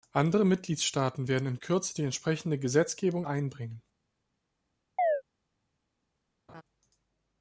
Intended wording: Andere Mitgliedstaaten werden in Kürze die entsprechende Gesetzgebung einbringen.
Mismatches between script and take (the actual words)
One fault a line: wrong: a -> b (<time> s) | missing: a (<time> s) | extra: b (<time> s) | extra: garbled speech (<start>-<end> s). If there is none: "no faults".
no faults